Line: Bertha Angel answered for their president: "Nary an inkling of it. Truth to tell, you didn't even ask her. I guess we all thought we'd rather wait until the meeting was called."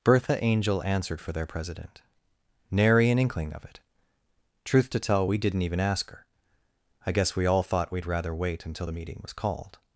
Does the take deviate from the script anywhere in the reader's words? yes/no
yes